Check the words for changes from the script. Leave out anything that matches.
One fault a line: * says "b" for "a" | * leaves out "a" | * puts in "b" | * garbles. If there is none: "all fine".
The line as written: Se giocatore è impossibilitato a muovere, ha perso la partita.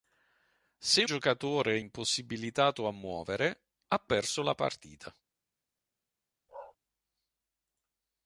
all fine